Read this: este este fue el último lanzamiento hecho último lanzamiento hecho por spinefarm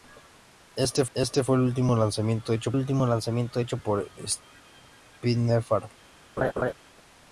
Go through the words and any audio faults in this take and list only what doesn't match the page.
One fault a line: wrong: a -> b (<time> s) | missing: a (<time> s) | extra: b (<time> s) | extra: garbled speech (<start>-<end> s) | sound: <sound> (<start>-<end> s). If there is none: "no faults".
sound: laugh (6.4-6.7 s)